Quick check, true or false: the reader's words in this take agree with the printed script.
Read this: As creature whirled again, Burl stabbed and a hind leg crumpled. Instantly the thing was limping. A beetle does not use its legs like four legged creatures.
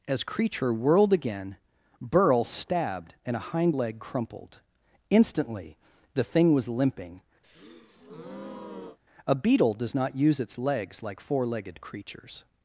true